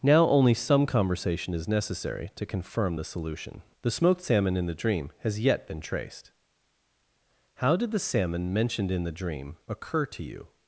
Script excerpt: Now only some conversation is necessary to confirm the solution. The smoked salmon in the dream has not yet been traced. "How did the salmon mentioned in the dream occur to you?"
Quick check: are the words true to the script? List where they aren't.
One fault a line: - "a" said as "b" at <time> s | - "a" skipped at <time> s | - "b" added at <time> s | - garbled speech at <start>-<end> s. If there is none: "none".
- "not" skipped at 5.4 s